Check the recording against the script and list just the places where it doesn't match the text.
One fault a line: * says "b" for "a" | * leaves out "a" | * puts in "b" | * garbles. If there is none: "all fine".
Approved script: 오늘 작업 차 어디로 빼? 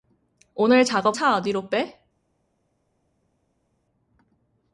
all fine